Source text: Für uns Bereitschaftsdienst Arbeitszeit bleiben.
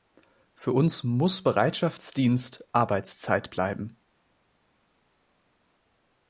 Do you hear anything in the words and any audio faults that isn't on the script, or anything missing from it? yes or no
yes